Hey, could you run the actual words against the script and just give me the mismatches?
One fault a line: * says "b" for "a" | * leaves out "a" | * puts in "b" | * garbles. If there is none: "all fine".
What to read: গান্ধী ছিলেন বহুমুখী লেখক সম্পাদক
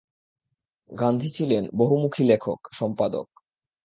all fine